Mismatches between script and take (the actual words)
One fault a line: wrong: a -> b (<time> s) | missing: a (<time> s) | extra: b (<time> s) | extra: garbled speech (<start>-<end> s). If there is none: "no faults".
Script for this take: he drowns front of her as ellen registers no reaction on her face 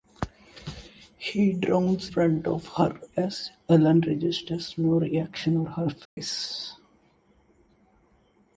no faults